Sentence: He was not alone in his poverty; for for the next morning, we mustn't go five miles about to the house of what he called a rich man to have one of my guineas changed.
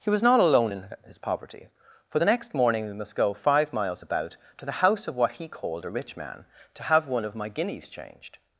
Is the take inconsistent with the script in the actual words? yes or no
yes